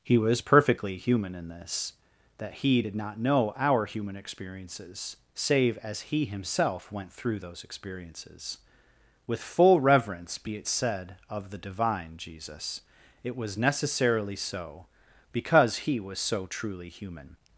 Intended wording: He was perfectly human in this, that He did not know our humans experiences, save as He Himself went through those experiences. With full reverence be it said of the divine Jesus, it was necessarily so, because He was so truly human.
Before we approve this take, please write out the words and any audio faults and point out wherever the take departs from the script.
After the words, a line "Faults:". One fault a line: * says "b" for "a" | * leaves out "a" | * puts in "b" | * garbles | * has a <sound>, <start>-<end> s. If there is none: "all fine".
He was perfectly human in this, that He did not know our human experiences, save as He Himself went through those experiences. With full reverence be it said of the divine Jesus, it was necessarily so, because He was so truly human.
Faults:
* says "human" for "humans"